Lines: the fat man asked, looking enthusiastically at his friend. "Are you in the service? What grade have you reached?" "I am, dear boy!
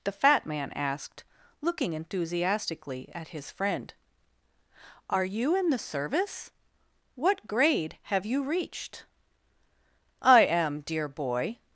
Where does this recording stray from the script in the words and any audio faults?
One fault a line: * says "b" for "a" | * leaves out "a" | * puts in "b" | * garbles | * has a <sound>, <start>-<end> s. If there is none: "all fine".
all fine